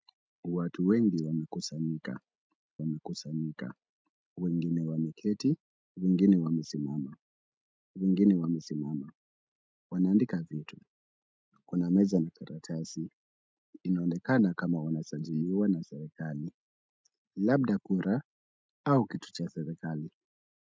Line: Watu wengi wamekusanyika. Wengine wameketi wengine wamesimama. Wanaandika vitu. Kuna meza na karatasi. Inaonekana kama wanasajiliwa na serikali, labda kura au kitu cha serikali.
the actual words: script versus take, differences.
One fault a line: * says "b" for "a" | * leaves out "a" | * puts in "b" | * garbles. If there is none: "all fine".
* puts in "wamekusanyika"
* puts in "wengine wamesimama"